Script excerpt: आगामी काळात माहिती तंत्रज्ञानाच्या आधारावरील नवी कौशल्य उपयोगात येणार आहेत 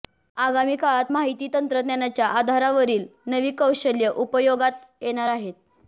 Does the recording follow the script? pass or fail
pass